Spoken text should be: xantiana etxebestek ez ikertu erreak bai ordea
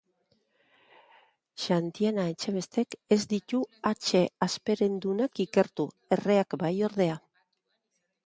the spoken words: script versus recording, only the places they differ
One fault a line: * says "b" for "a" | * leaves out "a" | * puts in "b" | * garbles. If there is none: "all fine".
* puts in "ditu hatxe hasperendunak"